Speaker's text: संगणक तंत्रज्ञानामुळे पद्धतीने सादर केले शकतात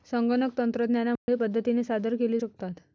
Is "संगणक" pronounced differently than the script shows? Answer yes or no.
no